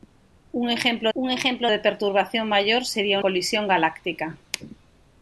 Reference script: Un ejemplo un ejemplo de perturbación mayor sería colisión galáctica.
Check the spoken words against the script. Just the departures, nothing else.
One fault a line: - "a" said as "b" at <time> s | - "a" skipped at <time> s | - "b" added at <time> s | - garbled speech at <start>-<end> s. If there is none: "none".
none